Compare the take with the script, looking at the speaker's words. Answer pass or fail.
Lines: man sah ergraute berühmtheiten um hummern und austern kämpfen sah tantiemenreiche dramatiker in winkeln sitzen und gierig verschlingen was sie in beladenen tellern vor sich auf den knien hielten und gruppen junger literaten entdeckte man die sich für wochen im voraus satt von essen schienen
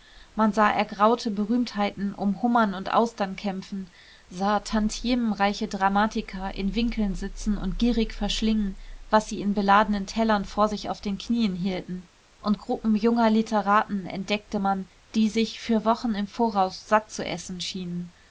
fail